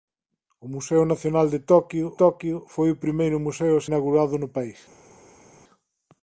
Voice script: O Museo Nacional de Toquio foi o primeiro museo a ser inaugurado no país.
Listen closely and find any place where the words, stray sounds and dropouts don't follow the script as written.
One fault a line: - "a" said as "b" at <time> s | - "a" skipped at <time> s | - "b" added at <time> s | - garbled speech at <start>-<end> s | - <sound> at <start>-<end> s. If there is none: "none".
- "Toquio" added at 2.2 s
- "ser" skipped at 3.9 s